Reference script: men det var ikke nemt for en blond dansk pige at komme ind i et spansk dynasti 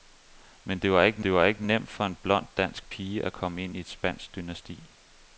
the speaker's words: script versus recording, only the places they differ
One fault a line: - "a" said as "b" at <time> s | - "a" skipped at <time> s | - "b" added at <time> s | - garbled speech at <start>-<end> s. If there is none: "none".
- "det var ikke" added at 1.2 s